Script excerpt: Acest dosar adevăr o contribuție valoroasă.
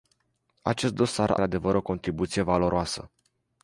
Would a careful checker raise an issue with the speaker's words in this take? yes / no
no